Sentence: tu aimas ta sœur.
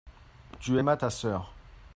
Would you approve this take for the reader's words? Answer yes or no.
yes